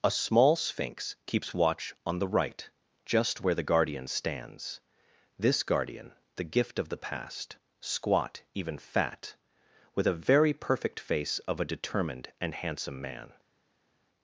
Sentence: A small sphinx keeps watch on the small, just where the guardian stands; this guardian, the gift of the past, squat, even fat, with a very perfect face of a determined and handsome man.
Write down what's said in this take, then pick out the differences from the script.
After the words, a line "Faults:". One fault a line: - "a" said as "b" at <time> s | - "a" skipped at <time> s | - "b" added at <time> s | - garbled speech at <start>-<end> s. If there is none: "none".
A small sphinx keeps watch on the right, just where the guardian stands; this guardian, the gift of the past, squat, even fat, with a very perfect face of a determined and handsome man.
Faults:
- "small" said as "right" at 2.3 s